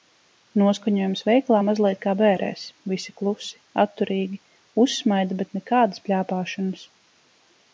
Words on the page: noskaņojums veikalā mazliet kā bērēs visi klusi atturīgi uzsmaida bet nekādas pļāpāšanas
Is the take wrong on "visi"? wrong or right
right